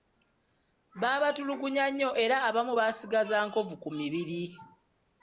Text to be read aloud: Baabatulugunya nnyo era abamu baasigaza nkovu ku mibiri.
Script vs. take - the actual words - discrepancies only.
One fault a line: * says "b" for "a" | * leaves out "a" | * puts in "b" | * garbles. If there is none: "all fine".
all fine